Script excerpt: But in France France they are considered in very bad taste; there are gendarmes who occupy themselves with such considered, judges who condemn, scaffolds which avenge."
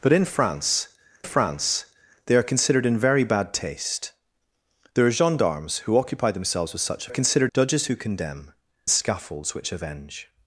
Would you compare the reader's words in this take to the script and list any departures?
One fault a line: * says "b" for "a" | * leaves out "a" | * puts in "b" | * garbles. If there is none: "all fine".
all fine